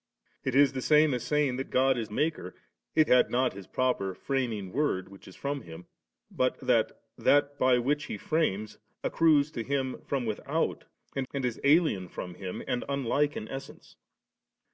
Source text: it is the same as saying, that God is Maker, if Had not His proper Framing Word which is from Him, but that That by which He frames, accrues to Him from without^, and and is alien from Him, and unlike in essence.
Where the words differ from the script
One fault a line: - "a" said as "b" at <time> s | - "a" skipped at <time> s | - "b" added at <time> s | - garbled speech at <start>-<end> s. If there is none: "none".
none